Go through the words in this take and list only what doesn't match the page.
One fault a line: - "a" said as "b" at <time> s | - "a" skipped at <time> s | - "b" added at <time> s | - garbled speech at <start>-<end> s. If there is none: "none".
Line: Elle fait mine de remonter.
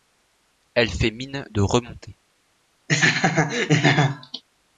none